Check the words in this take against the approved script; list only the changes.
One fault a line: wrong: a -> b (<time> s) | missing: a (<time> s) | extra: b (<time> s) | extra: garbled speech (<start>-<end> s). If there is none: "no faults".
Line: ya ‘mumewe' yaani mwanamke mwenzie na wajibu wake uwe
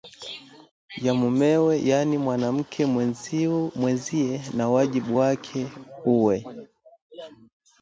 no faults